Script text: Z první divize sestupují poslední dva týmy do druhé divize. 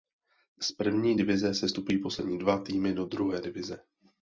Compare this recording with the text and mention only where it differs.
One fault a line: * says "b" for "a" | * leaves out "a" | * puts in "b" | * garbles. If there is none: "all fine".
all fine